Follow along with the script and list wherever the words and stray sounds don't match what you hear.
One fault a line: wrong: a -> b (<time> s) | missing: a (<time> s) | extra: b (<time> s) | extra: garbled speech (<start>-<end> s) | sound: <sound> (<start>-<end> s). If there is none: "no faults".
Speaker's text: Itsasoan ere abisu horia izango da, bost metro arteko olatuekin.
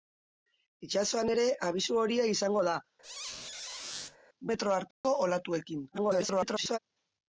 missing: bost (2.8 s)
sound: squeak (3.0-4.2 s)
sound: dropout (4.9-5.0 s)
extra: garbled speech (5.9-6.8 s)